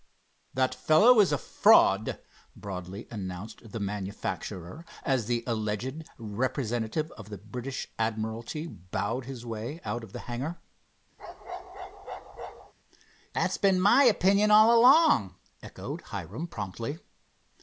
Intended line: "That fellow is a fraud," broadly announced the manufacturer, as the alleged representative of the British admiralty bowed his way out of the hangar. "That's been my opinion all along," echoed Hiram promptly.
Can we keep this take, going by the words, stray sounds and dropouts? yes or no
no